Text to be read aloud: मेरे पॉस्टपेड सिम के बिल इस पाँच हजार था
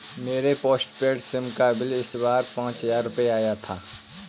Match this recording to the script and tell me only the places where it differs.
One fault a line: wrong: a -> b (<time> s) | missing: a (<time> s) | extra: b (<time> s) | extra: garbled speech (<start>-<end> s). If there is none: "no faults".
wrong: के -> का (1.5 s)
extra: बार (2.2 s)
extra: रुपए आया (3.0 s)